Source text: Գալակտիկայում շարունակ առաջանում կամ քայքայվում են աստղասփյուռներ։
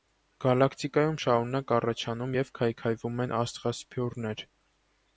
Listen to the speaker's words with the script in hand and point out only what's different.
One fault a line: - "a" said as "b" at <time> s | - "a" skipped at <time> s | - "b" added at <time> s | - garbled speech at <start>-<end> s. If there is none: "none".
- "կամ" said as "և" at 2.4 s